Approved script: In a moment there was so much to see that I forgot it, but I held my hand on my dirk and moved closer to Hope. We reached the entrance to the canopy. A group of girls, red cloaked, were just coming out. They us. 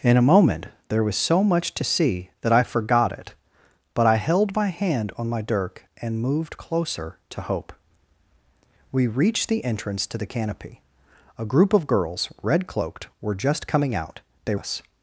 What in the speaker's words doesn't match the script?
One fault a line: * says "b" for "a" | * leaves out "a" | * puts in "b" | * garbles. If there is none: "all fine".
all fine